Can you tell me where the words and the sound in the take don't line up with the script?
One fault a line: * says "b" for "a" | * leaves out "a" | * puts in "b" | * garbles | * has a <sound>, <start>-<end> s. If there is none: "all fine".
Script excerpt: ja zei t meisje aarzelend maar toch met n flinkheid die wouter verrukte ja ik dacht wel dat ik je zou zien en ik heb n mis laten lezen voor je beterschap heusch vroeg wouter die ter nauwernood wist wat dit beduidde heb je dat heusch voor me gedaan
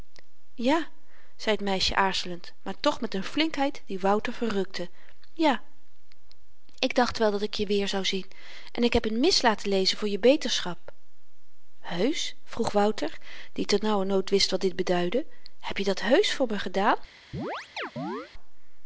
* puts in "weer"
* has a chirp, 17.3-18.3 s